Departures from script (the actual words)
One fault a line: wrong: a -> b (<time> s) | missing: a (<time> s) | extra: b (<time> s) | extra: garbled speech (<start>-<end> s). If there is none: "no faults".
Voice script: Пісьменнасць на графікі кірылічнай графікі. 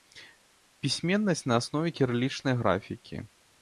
wrong: графікі -> аснове (1.6 s)